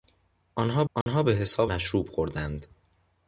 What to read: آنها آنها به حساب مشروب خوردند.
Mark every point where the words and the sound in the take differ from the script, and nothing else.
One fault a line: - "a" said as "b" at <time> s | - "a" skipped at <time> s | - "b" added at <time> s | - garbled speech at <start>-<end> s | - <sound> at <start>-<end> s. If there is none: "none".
- dropout at 1.0-1.1 s